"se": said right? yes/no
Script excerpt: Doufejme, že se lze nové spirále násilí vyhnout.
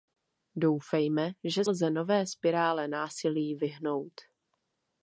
no